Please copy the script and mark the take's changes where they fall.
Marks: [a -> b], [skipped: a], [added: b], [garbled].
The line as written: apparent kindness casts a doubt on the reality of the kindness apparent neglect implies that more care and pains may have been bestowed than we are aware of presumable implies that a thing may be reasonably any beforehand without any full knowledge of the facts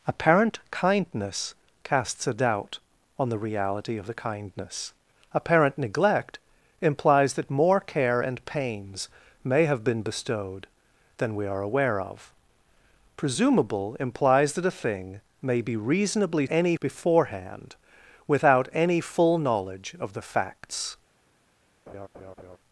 apparent kindness casts a doubt on the reality of the kindness apparent neglect implies that more care and pains may have been bestowed than we are aware of presumable implies that a thing may be reasonably any beforehand without any full knowledge of the facts